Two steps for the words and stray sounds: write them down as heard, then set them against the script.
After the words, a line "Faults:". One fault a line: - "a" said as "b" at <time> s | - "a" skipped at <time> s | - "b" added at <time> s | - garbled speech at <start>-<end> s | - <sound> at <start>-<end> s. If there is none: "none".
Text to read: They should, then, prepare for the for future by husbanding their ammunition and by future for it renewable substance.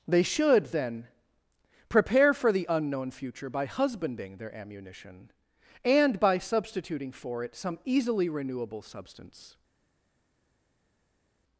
They should, then, prepare for the unknown future by husbanding their ammunition and by substituting for it some easily renewable substance.
Faults:
- "for" said as "unknown" at 2.7 s
- "future" said as "substituting" at 6.4 s
- "some easily" added at 7.5 s